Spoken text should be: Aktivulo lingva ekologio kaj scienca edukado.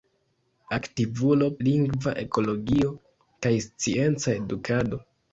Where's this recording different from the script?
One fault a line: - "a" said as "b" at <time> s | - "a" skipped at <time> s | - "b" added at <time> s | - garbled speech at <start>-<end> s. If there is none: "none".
none